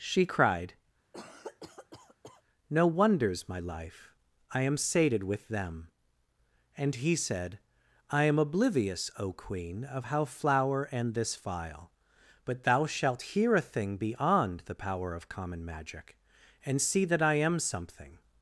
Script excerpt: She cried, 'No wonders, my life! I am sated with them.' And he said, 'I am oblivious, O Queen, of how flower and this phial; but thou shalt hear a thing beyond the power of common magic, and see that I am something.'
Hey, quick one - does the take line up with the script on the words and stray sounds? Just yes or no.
no